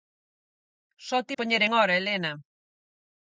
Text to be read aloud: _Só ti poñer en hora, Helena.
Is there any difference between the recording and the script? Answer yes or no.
no